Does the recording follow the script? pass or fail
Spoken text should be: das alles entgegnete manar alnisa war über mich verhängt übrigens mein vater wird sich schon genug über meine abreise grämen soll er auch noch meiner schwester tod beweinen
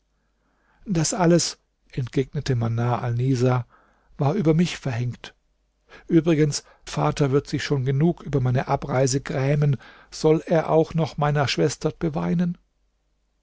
fail